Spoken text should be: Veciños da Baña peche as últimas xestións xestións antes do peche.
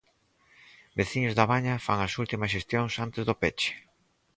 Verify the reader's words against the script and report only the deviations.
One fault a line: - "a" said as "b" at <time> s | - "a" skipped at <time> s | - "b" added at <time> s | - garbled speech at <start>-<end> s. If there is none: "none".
- "peche" said as "fan" at 1.9 s
- "xestións" skipped at 2.9 s